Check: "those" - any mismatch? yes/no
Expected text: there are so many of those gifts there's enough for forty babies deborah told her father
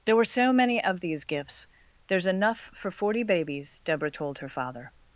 yes